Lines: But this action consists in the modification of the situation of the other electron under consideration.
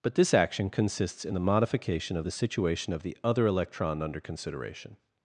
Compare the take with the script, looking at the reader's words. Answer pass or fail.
pass